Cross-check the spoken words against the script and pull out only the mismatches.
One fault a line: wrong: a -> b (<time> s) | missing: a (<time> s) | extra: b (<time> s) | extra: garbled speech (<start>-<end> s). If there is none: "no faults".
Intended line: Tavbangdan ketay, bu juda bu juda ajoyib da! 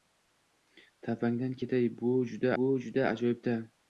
no faults